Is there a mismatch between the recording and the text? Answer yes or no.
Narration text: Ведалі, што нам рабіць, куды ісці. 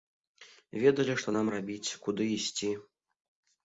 no